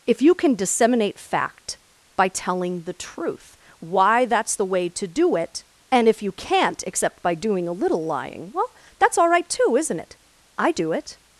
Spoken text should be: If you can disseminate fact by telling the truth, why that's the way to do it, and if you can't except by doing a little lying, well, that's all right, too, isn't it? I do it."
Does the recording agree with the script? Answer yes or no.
yes